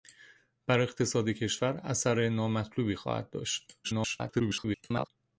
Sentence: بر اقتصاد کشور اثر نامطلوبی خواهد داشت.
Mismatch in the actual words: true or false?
true